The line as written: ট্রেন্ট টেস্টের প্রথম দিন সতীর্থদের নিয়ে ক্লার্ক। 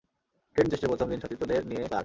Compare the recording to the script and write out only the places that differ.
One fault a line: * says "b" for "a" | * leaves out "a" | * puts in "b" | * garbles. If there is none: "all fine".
all fine